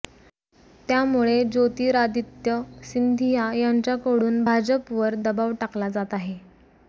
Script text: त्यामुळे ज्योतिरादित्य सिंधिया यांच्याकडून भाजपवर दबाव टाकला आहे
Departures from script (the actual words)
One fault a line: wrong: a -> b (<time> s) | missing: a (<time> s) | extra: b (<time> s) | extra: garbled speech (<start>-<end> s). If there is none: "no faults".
extra: जात (5.9 s)